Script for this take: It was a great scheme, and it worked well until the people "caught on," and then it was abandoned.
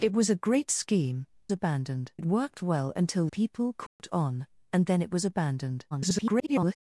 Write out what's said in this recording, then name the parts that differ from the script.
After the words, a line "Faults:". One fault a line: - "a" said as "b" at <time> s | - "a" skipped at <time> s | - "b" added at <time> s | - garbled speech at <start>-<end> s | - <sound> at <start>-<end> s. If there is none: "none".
It was a great scheme, abandoned it worked well until people "caught on," and then it was abandoned. [garbled]
Faults:
- "and" said as "abandoned" at 1.5 s
- "the" skipped at 3.3 s
- dropout at 3.9-4.0 s
- garbled speech at 5.9-6.8 s